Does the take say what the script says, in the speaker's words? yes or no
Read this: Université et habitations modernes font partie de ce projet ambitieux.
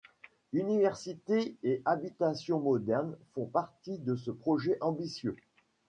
yes